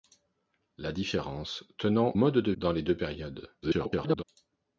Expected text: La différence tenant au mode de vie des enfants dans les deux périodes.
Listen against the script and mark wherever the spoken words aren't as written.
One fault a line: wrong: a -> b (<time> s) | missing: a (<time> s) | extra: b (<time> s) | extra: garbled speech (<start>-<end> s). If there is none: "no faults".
missing: au (2.1 s)
missing: vie des enfants (2.5 s)
extra: garbled speech (3.6-4.2 s)